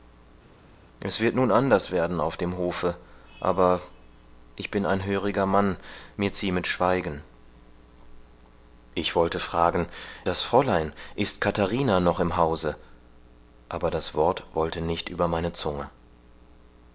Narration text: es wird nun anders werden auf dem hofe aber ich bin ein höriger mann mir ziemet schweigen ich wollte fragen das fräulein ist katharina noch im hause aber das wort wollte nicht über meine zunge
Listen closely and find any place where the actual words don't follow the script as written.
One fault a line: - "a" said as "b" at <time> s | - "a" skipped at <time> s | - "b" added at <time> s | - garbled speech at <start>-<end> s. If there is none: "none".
none